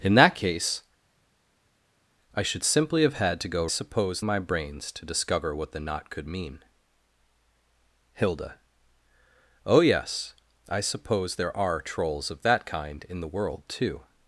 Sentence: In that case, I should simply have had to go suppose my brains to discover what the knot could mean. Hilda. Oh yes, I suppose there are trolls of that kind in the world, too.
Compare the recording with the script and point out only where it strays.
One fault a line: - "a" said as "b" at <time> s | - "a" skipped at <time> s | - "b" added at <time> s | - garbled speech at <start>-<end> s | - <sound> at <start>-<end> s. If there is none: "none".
none